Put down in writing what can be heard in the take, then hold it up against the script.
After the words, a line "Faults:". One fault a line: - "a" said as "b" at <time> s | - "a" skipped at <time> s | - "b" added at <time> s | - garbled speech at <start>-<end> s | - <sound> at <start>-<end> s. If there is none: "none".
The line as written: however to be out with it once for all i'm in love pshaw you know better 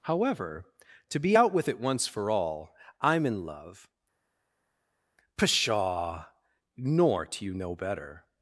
however to be out with it once for all i'm in love pshaw nor do you know better
Faults:
- "nor do" added at 6.8 s